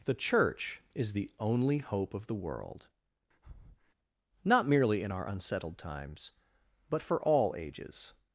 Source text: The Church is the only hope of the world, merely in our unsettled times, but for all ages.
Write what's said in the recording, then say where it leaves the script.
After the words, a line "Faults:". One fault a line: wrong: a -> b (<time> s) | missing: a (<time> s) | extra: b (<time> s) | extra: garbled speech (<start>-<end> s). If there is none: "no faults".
The Church is the only hope of the world, not merely in our unsettled times, but for all ages.
Faults:
extra: not (4.4 s)